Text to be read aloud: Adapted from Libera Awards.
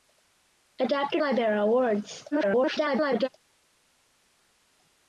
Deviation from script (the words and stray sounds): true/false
true